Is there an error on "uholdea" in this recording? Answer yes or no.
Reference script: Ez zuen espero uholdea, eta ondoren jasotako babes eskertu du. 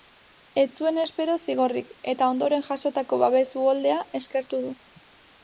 yes